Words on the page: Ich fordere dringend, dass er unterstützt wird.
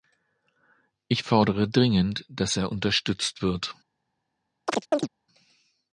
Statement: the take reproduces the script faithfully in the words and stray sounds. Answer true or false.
false